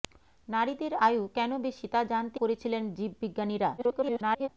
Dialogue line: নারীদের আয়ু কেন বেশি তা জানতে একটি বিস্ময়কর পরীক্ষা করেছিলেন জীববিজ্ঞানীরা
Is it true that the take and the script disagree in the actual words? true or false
true